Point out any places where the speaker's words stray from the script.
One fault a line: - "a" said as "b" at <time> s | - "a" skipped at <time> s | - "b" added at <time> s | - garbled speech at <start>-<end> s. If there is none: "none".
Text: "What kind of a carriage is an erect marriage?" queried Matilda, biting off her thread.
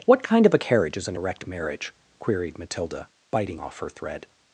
none